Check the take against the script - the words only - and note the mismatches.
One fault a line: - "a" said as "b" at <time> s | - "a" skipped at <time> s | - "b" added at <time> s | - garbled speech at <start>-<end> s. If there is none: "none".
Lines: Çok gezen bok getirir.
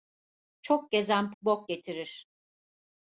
none